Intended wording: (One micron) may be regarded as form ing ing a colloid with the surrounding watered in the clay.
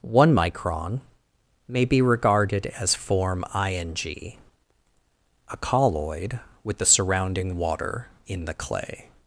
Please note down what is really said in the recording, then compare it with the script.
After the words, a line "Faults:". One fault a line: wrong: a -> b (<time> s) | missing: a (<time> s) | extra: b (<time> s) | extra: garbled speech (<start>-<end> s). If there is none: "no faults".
(One micron) may be regarded as form ing a colloid with the surrounding water in the clay.
Faults:
missing: ing (4.0 s)
wrong: watered -> water (7.6 s)